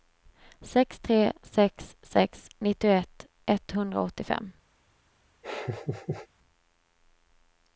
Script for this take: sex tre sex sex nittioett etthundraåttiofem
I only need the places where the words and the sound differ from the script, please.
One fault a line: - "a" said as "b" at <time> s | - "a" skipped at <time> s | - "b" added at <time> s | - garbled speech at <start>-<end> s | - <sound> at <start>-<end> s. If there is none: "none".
- laugh at 5.4-6.3 s